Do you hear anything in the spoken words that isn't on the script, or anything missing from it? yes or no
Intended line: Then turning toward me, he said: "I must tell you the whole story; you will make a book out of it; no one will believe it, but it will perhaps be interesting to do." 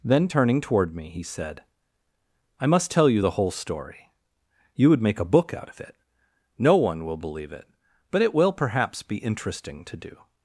yes